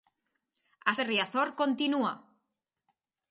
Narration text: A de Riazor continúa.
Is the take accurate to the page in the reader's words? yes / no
yes